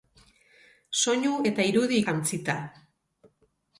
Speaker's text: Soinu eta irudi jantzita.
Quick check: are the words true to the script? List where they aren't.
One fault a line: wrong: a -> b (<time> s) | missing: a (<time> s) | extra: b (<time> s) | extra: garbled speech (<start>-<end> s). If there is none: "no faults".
no faults